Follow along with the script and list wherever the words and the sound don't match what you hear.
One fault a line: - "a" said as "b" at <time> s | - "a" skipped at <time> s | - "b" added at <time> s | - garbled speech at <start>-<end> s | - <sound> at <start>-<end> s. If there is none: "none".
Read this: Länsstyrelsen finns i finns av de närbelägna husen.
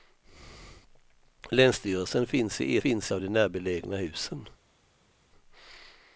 none